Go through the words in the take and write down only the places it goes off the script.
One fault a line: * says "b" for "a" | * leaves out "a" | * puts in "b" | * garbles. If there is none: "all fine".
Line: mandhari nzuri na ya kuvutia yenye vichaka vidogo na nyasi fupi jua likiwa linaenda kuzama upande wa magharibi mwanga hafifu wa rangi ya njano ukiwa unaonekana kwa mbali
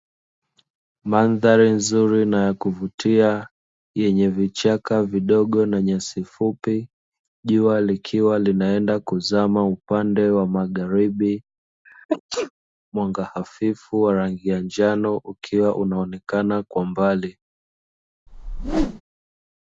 all fine